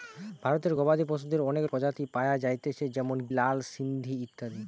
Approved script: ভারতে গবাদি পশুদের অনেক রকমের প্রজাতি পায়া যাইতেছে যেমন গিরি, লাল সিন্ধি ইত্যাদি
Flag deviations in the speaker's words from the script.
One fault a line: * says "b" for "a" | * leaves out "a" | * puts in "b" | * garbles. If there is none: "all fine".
* leaves out "রকমের"
* leaves out "গিরি"